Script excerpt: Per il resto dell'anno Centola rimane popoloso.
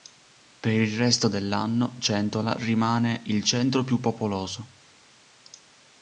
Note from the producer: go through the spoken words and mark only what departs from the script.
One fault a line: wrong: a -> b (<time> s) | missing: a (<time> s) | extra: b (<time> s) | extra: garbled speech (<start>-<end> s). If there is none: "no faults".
extra: il centro più (3.2 s)